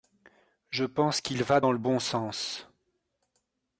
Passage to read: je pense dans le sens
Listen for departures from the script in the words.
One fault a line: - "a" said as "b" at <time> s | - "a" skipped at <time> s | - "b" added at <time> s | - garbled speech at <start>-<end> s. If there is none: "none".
- "qu'il va" added at 1.2 s
- "bon" added at 1.8 s